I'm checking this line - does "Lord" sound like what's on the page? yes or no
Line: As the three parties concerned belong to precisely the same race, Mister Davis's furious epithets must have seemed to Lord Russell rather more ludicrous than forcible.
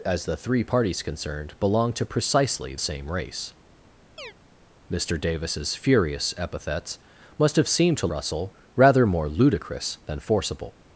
no